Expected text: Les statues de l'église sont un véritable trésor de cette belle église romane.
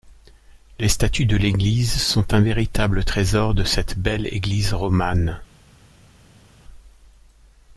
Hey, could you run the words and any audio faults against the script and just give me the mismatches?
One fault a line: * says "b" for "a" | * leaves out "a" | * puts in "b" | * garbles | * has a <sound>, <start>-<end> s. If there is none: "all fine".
all fine